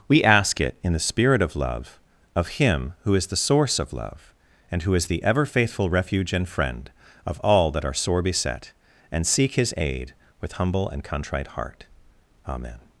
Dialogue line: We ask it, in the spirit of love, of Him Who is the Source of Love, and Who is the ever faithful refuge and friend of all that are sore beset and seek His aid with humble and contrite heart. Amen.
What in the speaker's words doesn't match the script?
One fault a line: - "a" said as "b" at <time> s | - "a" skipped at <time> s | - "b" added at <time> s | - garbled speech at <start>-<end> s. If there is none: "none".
none